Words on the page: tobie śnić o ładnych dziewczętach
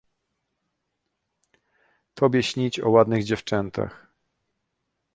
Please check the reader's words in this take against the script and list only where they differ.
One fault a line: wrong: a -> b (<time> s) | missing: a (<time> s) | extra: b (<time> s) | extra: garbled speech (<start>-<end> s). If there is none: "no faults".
no faults